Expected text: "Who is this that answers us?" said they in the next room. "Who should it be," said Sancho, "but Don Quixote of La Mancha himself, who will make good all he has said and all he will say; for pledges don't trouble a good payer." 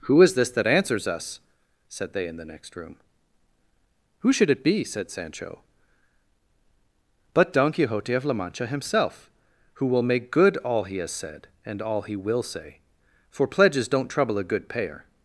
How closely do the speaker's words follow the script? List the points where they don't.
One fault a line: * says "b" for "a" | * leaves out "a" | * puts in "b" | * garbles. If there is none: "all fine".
all fine